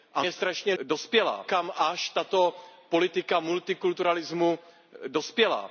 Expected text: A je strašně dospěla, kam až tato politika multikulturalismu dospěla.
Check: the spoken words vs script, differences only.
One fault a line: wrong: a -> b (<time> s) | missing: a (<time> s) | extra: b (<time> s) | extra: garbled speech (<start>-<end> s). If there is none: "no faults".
no faults